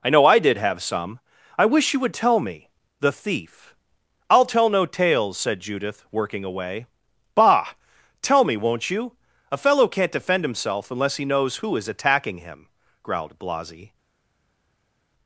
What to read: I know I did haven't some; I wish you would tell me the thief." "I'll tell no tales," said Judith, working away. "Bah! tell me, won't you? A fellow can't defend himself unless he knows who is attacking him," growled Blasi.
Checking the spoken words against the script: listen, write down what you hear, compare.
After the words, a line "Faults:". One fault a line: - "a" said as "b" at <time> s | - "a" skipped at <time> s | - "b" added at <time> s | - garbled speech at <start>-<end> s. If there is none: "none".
I know I did have some; I wish you would tell me the thief." "I'll tell no tales," said Judith, working away. "Bah! tell me, won't you? A fellow can't defend himself unless he knows who is attacking him," growled Blasi.
Faults:
- "haven't" said as "have" at 0.6 s